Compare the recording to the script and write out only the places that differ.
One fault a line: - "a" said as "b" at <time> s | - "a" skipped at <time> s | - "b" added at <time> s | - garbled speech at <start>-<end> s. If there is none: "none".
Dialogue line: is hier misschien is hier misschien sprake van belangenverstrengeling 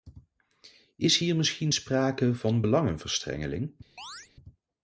- "is hier misschien" skipped at 1.7 s